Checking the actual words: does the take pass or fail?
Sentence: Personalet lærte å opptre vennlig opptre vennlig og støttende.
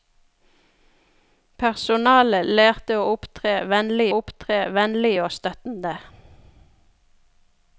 pass